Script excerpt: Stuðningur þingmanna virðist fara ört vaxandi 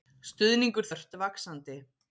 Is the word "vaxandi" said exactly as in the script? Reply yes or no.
yes